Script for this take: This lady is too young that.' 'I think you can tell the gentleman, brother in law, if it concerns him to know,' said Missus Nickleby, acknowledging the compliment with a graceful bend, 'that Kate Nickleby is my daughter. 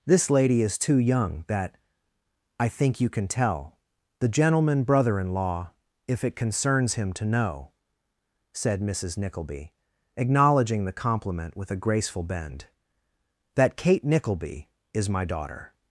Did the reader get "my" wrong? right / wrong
right